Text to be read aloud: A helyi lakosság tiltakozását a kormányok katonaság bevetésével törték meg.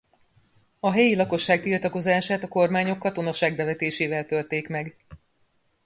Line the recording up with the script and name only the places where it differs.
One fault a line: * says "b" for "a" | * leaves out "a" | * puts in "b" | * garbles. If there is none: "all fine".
all fine